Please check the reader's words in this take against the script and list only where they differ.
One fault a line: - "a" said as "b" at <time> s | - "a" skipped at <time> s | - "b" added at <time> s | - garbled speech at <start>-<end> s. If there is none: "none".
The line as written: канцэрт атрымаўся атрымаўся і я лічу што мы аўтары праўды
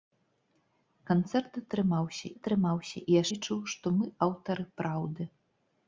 none